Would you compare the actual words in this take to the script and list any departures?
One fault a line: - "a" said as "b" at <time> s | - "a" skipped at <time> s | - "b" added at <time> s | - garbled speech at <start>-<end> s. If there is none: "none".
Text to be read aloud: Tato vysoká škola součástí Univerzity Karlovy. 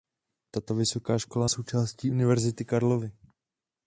none